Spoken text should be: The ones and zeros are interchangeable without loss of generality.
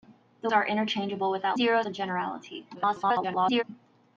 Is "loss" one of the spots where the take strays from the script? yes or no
yes